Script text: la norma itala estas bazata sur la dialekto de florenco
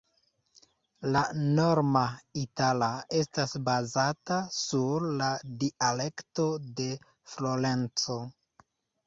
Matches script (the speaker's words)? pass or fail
pass